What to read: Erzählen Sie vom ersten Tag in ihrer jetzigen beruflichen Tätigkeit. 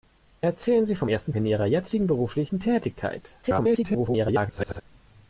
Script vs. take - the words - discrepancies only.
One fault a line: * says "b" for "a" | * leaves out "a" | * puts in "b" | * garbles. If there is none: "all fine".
* leaves out "Tag"
* garbles